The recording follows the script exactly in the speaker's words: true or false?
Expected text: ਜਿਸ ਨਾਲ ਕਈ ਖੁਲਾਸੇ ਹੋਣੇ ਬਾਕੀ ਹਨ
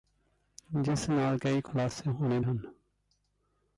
false